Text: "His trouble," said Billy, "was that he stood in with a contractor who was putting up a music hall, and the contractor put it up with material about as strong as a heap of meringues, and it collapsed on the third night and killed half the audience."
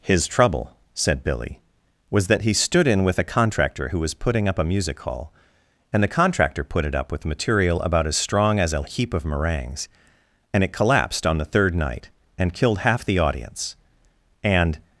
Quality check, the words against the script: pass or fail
fail